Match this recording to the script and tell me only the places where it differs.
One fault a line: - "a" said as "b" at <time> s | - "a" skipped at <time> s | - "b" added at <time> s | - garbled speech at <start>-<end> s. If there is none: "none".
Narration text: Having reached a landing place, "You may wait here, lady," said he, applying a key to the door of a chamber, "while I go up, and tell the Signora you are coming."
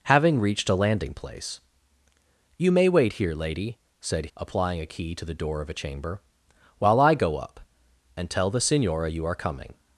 - "he" skipped at 4.3 s